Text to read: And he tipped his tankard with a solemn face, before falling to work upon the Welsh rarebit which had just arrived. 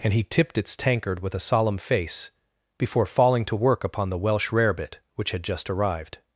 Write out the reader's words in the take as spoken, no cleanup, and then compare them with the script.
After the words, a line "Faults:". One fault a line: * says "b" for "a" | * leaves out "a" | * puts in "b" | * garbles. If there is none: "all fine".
And he tipped its tankard with a solemn face, before falling to work upon the Welsh rarebit which had just arrived.
Faults:
* says "its" for "his"